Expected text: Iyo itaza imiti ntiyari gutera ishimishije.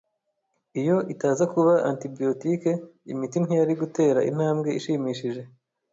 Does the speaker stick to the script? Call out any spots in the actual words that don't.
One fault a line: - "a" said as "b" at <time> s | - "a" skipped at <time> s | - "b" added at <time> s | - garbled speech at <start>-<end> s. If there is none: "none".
- "kuba antibiyotike" added at 1.5 s
- "intambwe" added at 4.3 s